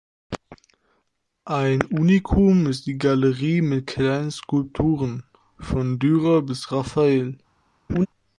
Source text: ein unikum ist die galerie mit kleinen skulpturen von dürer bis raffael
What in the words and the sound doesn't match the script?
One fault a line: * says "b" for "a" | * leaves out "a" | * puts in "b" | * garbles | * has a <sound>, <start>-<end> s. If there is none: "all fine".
* has a laugh, 7.9-8.1 s